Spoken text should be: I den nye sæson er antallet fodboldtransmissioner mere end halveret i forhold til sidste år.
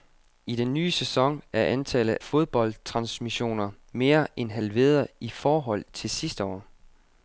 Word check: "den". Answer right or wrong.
right